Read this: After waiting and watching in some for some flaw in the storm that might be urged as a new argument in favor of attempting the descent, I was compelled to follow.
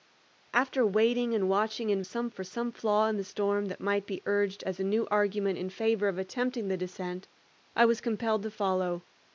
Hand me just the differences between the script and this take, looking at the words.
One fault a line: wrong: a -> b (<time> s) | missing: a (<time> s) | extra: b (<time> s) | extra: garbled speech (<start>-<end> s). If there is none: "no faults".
no faults